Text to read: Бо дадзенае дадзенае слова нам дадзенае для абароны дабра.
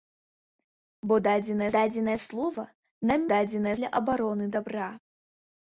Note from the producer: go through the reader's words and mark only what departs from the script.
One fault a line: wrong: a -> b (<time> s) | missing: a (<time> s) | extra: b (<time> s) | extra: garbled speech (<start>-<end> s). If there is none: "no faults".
no faults